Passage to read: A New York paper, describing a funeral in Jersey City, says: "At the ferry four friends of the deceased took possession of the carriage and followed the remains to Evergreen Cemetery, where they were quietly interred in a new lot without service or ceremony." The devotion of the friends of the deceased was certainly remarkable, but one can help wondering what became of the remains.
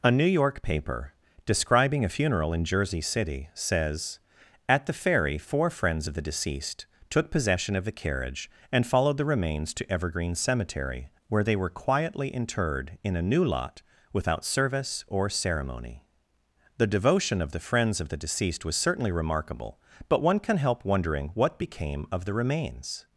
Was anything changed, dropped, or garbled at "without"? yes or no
no